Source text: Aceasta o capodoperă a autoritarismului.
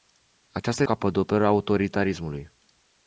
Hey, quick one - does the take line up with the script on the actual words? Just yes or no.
yes